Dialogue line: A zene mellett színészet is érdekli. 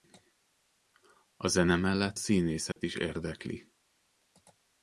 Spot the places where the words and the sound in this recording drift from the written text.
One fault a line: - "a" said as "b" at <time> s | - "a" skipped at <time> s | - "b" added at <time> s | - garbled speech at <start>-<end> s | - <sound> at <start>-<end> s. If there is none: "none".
- dropout at 2.7-2.8 s